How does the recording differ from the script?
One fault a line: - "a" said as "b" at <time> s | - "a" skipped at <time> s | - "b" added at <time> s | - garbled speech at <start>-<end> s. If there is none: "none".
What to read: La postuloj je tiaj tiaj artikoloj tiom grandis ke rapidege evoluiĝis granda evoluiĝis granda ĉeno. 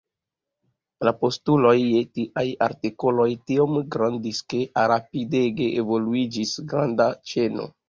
- "tiaj" skipped at 2.4 s
- "evoluiĝis granda" skipped at 7.1 s